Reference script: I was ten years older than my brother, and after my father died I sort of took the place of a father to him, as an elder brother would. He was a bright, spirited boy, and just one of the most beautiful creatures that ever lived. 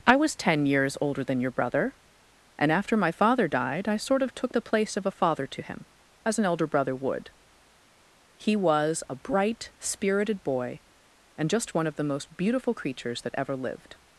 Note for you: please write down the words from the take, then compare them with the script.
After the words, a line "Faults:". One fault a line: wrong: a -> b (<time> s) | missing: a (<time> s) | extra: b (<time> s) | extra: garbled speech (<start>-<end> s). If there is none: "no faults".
I was ten years older than your brother, and after my father died I sort of took the place of a father to him, as an elder brother would. He was a bright, spirited boy, and just one of the most beautiful creatures that ever lived.
Faults:
wrong: my -> your (1.4 s)